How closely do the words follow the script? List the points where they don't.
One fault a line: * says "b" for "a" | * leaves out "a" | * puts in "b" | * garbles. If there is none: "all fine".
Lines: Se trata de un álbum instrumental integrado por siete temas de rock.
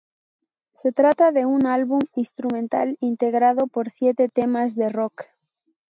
all fine